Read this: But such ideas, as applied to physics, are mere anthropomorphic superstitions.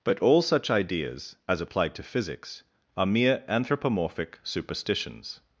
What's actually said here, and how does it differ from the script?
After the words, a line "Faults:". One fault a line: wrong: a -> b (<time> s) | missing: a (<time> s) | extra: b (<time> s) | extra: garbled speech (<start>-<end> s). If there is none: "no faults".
But all such ideas, as applied to physics, are mere anthropomorphic superstitions.
Faults:
extra: all (0.2 s)